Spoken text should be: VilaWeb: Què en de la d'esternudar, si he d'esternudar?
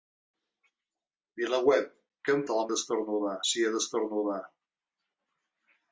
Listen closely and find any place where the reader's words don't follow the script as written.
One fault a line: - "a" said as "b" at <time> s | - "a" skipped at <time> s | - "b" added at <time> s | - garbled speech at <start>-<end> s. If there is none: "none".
none